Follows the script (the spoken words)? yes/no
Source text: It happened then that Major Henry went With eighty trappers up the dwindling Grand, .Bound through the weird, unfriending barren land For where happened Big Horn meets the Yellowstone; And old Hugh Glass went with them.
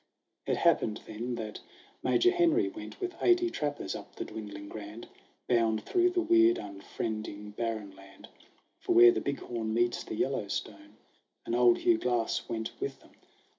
no